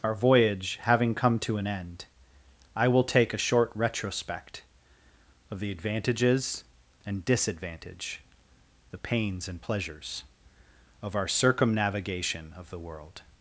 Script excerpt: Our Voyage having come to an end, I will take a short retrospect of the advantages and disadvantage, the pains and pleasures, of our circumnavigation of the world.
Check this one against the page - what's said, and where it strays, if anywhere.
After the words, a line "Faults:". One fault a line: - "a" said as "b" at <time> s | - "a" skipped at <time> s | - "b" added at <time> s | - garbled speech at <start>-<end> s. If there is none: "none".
Our Voyage having come to an end, I will take a short retrospect of the advantages and disadvantage, the pains and pleasures, of our circumnavigation of the world.
Faults:
none